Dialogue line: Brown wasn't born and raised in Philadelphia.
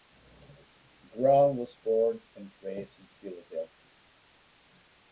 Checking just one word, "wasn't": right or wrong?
wrong